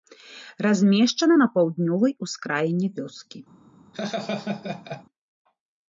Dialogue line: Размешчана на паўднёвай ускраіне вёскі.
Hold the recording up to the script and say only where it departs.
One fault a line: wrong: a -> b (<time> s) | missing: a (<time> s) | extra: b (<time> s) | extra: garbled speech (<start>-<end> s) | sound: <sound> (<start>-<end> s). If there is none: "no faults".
sound: laugh (3.9-5.0 s)